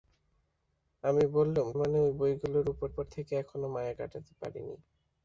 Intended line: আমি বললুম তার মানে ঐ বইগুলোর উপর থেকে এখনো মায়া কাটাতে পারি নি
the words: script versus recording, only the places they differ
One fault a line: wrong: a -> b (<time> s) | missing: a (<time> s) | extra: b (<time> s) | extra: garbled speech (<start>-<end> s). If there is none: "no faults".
missing: তার (1.7 s)
extra: উপর (2.9 s)